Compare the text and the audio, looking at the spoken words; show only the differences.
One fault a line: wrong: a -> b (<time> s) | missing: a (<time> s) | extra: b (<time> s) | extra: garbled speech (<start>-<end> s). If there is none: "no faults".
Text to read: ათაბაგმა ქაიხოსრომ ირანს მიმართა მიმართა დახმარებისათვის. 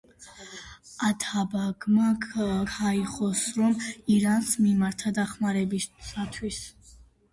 missing: მიმართა (5.1 s)